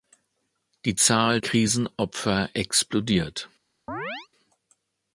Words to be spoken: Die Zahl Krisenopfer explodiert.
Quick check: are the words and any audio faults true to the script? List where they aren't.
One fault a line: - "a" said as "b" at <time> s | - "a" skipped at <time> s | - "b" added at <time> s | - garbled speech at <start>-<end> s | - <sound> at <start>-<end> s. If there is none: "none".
- chirp at 3.9-4.3 s